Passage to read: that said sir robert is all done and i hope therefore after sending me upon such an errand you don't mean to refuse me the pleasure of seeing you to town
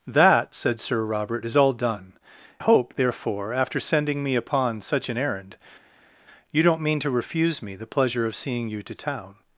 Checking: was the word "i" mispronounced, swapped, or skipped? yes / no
yes